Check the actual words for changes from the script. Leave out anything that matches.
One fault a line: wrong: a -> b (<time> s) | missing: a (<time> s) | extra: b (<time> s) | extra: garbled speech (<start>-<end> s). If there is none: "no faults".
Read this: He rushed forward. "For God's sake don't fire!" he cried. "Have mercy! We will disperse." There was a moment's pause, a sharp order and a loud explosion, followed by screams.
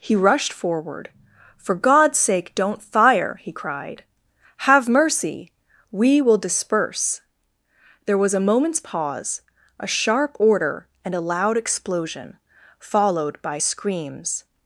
no faults